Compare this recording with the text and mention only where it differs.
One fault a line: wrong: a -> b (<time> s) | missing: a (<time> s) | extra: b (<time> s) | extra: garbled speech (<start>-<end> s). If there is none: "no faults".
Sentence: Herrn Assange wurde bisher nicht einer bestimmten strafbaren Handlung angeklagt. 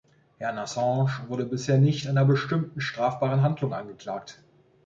no faults